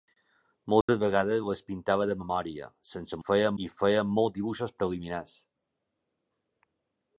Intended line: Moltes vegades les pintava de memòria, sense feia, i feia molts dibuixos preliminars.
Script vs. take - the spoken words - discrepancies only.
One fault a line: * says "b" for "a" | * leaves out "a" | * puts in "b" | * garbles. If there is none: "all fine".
all fine